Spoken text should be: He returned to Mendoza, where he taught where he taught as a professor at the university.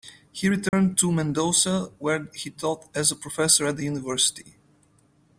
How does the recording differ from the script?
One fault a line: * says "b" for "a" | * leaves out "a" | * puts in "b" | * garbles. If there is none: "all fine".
* leaves out "where he taught"